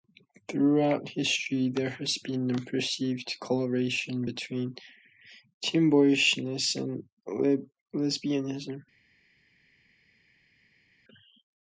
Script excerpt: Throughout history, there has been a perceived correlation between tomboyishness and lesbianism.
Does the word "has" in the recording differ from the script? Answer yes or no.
no